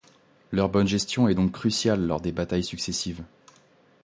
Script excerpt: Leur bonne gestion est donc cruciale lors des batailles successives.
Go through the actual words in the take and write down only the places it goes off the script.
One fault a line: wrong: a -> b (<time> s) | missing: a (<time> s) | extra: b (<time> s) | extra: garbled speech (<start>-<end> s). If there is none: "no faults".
no faults